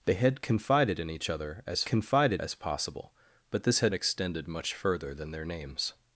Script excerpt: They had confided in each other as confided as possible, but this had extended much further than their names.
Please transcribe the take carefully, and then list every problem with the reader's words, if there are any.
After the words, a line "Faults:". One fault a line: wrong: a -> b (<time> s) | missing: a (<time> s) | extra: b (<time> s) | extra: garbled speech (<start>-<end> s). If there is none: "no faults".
They had confided in each other as confided as possible, but this had extended much further than their names.
Faults:
no faults